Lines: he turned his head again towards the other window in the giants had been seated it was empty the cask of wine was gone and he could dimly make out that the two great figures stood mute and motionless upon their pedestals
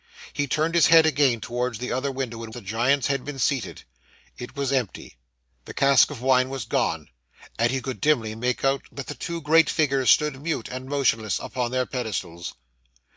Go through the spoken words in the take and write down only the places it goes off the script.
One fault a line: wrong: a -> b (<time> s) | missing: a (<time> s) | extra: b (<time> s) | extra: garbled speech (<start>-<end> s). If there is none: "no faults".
no faults